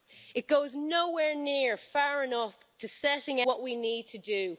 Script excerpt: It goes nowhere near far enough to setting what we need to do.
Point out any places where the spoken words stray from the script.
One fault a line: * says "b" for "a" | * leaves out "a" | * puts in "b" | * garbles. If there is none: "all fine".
all fine